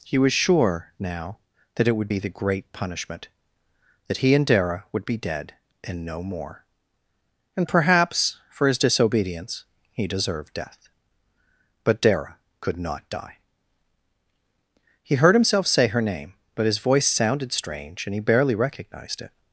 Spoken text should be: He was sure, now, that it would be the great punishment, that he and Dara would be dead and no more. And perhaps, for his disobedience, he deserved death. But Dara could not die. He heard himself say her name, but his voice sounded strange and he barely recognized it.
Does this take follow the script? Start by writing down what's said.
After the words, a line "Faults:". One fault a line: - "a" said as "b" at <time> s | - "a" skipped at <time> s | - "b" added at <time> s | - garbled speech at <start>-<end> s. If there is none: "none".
He was sure, now, that it would be the great punishment, that he and Dara would be dead and no more. And perhaps, for his disobedience, he deserved death. But Dara could not die. He heard himself say her name, but his voice sounded strange and he barely recognized it.
Faults:
none